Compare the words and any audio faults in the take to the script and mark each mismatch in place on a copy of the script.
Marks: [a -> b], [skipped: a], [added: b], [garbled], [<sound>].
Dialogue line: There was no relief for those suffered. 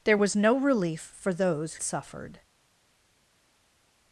There was no relief for those suffered.